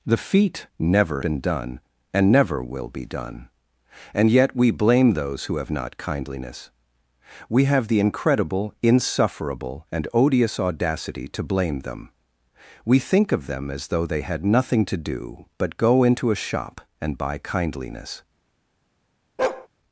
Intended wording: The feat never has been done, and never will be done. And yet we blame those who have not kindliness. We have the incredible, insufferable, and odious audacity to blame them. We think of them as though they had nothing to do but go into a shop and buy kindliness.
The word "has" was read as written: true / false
false